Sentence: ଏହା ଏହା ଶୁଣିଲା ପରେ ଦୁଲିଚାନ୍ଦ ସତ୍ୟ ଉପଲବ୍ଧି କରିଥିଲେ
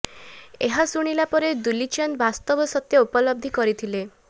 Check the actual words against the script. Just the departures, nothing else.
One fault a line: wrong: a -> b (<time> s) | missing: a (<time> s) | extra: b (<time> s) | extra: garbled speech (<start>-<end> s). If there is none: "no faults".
missing: ଏହା (0.8 s)
extra: ବାସ୍ତବ (2.2 s)